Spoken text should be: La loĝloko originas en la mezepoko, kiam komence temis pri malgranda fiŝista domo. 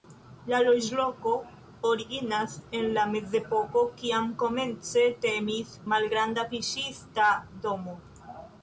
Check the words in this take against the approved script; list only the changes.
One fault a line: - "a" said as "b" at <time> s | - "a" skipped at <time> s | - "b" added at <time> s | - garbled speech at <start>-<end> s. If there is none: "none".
- "pri" skipped at 5.7 s